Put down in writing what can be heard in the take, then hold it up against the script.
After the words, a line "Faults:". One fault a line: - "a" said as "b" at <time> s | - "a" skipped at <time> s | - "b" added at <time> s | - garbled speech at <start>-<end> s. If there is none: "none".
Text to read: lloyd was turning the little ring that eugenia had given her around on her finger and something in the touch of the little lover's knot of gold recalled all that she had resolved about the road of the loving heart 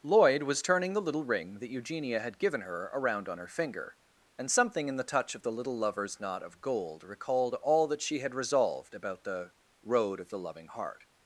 lloyd was turning the little ring that eugenia had given her around on her finger and something in the touch of the little lover's knot of gold recalled all that she had resolved about the road of the loving heart
Faults:
none